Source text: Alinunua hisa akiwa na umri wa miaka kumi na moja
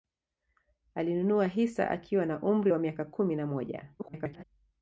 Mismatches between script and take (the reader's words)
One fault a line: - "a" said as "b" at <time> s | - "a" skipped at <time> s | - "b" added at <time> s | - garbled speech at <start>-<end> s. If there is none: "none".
- garbled speech at 4.0-4.4 s